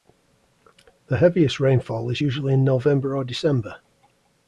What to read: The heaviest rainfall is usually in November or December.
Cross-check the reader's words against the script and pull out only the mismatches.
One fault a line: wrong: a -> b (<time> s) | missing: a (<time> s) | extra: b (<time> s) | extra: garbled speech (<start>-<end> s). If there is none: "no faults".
no faults